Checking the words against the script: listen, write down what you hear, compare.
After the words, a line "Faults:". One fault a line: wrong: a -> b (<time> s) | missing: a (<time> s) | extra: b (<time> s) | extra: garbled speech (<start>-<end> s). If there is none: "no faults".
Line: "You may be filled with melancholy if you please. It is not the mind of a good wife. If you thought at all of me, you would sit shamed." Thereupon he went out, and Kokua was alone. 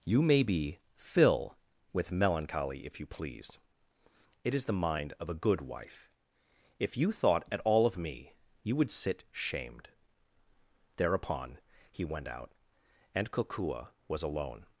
"You may be fill with melancholy if you please. It is the mind of a good wife. If you thought at all of me, you would sit shamed." Thereupon he went out, and Kokua was alone.
Faults:
wrong: filled -> fill (0.9 s)
missing: not (4.7 s)